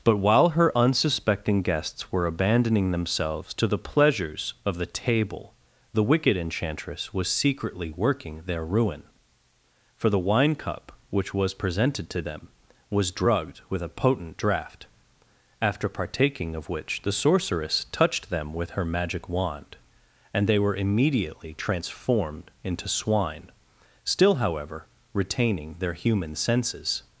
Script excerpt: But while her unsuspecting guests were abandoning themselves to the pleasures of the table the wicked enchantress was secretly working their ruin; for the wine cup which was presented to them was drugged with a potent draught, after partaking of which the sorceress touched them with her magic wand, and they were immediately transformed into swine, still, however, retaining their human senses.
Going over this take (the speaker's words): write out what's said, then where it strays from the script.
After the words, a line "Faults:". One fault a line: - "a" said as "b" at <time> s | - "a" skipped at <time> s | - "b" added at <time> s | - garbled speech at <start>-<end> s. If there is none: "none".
But while her unsuspecting guests were abandoning themselves to the pleasures of the table the wicked enchantress was secretly working their ruin; for the wine cup which was presented to them was drugged with a potent draught, after partaking of which the sorceress touched them with her magic wand, and they were immediately transformed into swine, still, however, retaining their human senses.
Faults:
none